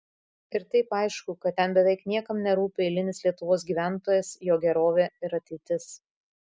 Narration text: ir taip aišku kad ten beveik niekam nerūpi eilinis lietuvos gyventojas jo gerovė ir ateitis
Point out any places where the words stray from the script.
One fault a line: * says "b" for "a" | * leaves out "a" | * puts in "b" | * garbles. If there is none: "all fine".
all fine